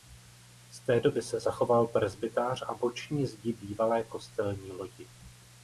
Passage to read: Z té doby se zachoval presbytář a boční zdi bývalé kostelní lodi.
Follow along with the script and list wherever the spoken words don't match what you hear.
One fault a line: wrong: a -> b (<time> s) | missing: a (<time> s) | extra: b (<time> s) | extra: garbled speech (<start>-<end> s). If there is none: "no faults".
no faults